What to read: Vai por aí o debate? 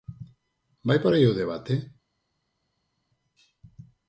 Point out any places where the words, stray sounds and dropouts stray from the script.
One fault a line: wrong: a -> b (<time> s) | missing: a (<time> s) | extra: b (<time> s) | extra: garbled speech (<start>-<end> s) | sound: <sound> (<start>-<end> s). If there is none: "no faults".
no faults